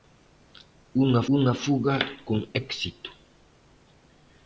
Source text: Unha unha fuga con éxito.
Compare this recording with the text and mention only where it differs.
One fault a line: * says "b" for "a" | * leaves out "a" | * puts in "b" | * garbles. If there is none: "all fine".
all fine